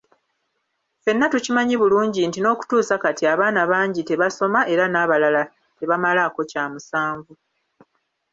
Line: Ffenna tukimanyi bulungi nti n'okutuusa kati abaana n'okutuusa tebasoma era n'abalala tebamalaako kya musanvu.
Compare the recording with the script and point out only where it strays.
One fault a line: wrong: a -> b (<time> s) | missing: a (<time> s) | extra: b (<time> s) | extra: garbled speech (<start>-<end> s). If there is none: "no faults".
wrong: n'okutuusa -> bangi (3.7 s)